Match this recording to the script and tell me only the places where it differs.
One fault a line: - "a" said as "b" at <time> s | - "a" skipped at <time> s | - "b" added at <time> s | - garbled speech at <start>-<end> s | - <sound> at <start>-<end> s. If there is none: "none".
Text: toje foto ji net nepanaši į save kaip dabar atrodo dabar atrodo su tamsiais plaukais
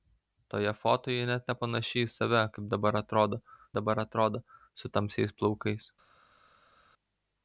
none